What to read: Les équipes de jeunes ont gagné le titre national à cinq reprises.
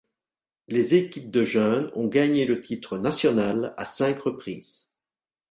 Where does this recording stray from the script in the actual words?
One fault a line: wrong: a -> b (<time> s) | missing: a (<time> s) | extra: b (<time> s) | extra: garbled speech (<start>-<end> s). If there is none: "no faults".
no faults